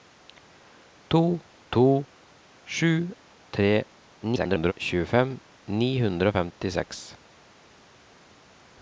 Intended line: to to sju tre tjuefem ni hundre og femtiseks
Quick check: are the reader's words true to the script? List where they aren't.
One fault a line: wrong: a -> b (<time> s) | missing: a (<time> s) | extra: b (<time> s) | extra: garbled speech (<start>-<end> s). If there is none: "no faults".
extra: garbled speech (4.2-4.7 s)